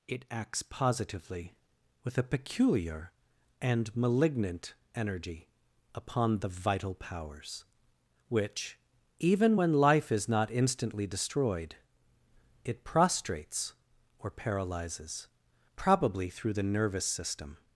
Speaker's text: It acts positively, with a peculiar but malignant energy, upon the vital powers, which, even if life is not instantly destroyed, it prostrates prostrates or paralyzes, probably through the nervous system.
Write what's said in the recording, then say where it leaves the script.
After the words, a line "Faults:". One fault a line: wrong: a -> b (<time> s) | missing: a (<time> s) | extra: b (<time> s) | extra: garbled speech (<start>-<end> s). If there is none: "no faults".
It acts positively, with a peculiar and malignant energy, upon the vital powers, which, even when life is not instantly destroyed, it prostrates or paralyzes, probably through the nervous system.
Faults:
wrong: but -> and (3.6 s)
wrong: if -> when (9.6 s)
missing: prostrates (13.7 s)